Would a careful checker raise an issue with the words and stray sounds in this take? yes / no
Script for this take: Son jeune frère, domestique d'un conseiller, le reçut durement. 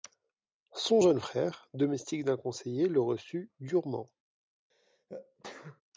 yes